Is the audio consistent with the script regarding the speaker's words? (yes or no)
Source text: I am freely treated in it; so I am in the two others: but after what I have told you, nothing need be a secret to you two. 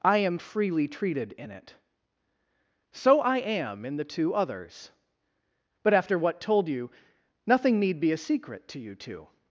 no